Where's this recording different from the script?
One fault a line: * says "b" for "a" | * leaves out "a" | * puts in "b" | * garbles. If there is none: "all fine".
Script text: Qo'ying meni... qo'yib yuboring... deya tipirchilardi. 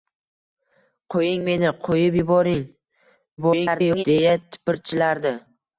* garbles